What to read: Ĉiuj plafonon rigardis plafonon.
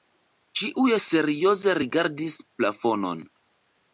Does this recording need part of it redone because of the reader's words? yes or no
yes